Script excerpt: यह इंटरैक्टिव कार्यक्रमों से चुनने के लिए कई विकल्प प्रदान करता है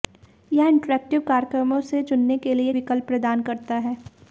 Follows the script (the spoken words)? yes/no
no